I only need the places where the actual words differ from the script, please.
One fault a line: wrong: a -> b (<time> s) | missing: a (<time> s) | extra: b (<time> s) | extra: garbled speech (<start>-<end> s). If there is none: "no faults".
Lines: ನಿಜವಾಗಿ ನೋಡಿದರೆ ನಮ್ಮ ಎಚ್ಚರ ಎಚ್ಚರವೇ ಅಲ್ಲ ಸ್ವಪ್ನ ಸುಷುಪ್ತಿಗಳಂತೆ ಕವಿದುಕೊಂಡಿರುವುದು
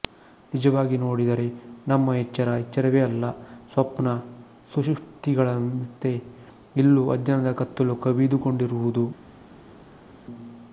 extra: ಇಲ್ಲೂ ಅಜ್ಞಾನದ ಕತ್ತಲು (6.8 s)